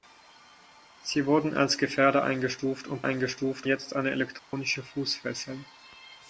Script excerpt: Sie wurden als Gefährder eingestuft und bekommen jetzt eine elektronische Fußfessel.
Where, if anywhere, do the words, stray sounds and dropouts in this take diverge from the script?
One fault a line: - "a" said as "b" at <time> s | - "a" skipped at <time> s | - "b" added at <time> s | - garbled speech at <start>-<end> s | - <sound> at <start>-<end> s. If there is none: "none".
- "bekommen" said as "eingestuft" at 3.0 s
- dropout at 4.4-4.5 s